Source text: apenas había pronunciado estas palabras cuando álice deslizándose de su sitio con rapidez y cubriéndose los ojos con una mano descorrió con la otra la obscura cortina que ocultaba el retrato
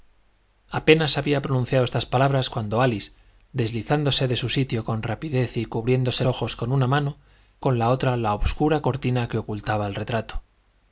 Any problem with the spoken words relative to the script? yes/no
yes